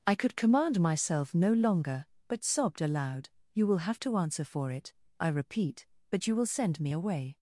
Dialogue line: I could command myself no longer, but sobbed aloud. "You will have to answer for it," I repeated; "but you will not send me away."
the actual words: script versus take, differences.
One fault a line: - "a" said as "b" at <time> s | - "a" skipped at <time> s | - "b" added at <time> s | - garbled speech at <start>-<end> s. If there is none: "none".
- "repeated" said as "repeat" at 5.3 s
- "not" skipped at 6.5 s